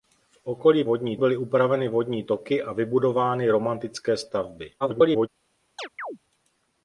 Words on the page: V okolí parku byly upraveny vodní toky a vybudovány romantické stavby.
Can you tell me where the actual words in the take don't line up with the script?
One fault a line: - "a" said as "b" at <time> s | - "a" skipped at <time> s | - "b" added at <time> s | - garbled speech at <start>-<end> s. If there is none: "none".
- "parku" said as "vodní" at 0.8 s
- garbled speech at 4.8-5.3 s